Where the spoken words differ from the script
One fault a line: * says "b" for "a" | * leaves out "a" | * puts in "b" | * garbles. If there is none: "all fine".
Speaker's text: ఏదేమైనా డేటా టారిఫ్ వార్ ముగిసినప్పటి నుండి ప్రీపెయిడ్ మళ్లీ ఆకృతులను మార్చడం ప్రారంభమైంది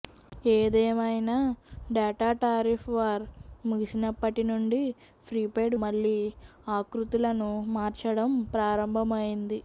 all fine